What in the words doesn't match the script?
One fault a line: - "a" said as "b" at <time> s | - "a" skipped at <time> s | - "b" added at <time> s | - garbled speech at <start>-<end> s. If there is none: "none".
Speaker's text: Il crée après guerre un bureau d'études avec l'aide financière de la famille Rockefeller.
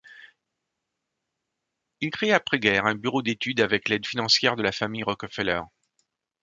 none